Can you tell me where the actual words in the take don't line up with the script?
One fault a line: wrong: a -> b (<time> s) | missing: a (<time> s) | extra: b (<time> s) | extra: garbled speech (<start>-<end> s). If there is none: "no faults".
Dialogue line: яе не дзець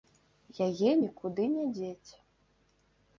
extra: нікуды (1.0 s)